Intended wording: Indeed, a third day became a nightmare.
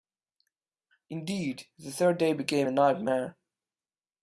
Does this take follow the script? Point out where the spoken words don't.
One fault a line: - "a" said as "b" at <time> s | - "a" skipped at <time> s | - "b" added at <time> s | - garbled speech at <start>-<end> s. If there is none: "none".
- "a" said as "the" at 1.8 s